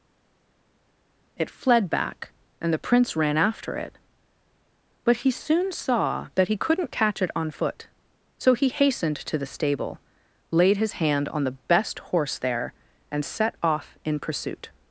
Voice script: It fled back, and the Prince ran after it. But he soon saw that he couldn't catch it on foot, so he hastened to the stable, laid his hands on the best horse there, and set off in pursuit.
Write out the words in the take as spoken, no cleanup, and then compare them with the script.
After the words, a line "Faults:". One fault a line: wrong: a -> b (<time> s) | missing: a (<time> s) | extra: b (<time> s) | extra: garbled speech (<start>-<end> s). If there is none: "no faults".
It fled back, and the Prince ran after it. But he soon saw that he couldn't catch it on foot, so he hastened to the stable, laid his hand on the best horse there, and set off in pursuit.
Faults:
wrong: hands -> hand (10.9 s)